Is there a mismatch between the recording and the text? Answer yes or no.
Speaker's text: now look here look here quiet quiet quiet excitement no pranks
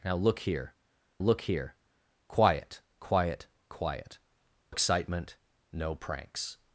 no